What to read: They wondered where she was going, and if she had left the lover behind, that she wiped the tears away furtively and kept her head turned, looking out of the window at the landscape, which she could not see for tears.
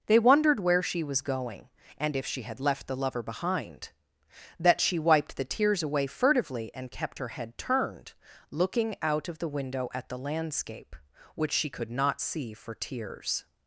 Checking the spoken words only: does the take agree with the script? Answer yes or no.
yes